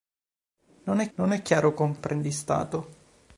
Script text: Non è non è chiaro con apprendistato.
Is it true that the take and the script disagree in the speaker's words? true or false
false